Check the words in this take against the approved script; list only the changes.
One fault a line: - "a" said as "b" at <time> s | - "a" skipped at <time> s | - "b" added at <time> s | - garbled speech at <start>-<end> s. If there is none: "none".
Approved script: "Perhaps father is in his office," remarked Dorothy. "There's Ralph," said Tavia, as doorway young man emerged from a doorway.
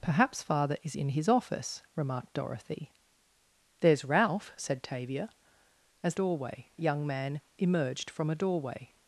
none